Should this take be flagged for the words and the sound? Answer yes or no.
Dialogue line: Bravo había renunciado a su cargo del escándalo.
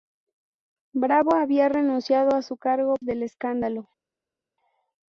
no